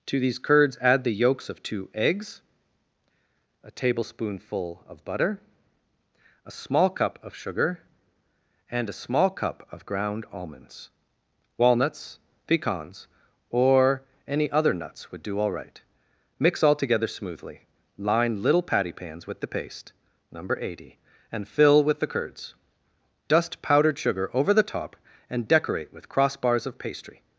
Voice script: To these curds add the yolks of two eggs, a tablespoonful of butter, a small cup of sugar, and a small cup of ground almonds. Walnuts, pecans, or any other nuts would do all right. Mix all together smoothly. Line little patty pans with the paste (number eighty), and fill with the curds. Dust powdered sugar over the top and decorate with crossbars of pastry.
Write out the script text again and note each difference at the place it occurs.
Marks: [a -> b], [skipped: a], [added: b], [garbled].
To these curds add the yolks of two eggs, a tablespoonful of butter, a small cup of sugar, and a small cup of ground almonds. Walnuts, pecans, or any other nuts would do all right. Mix all together smoothly. Line little patty pans with the paste (number eighty), and fill with the curds. Dust powdered sugar over the top and decorate with crossbars of pastry.